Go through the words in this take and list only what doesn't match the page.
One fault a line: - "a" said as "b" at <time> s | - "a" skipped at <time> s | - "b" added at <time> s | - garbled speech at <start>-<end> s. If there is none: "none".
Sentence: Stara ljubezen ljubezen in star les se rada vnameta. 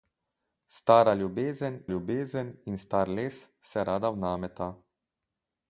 none